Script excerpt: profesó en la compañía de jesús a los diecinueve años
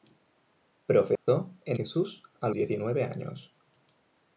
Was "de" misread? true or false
true